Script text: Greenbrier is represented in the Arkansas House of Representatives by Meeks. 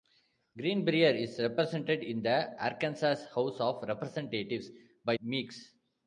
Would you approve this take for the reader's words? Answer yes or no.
yes